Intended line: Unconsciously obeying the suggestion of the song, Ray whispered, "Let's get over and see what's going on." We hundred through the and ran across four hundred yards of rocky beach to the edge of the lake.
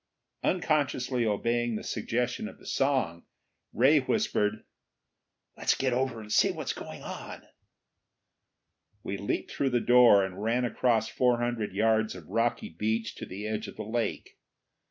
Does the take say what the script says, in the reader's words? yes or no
no